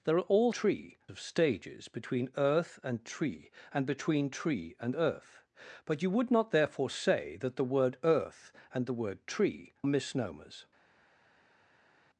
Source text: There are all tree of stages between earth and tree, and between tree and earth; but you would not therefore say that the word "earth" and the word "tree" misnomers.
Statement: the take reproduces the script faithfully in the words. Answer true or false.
true